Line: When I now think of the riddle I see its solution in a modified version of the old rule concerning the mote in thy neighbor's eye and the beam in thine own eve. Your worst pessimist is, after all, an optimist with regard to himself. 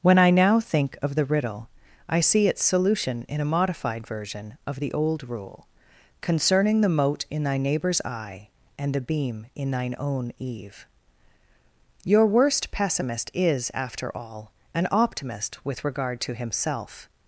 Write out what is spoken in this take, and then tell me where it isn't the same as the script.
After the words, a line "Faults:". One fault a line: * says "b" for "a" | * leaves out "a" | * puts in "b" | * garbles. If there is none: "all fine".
When I now think of the riddle I see its solution in a modified version of the old rule concerning the mote in thy neighbor's eye and the beam in thine own eve. Your worst pessimist is, after all, an optimist with regard to himself.
Faults:
all fine